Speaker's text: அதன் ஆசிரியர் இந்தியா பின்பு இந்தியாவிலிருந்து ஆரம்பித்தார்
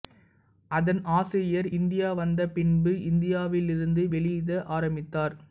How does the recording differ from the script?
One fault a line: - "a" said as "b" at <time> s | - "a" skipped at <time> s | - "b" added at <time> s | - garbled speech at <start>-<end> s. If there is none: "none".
- "வந்த" added at 2.2 s
- "வெளியிட" added at 4.1 s